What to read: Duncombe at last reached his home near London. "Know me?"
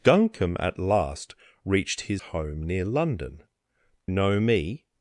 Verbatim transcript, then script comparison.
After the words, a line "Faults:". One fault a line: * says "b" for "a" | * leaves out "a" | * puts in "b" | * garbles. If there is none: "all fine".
Duncombe at last reached his home near London. "Know me?"
Faults:
all fine